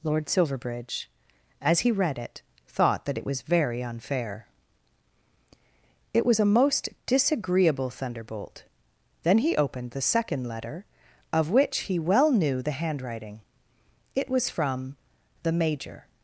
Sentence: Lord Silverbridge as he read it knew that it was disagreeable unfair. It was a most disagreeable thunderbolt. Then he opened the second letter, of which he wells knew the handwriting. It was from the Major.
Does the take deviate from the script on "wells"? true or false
true